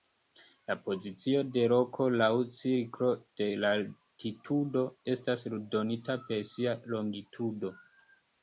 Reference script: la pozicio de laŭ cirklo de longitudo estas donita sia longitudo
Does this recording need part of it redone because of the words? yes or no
yes